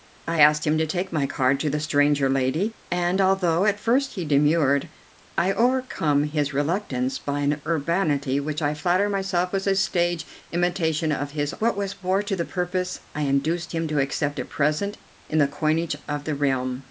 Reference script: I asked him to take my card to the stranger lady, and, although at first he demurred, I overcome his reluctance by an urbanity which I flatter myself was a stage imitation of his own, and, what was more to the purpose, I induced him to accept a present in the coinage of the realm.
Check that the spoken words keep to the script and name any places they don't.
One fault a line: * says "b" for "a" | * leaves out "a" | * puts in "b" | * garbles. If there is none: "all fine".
* leaves out "own and"